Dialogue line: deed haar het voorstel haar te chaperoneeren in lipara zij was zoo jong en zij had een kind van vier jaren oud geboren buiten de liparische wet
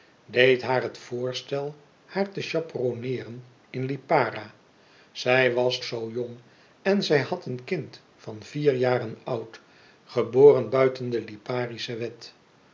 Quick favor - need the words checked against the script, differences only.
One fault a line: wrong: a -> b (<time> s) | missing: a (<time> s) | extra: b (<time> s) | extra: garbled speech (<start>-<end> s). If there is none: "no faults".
no faults